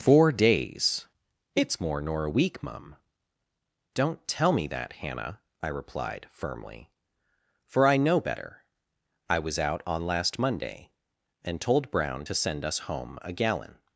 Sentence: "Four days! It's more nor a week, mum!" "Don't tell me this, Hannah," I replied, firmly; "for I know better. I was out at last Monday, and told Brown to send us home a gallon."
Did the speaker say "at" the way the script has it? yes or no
no